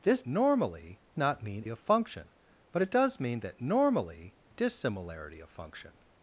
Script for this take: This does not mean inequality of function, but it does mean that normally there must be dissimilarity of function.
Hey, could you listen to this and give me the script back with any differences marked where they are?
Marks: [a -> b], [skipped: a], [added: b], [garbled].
This [does -> normally] not mean [skipped: inequality] of function, but it does mean that normally [skipped: there must be] dissimilarity of function.